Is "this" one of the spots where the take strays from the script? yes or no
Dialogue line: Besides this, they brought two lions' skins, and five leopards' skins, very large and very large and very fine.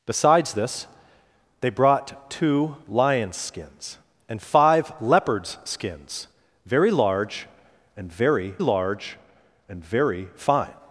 no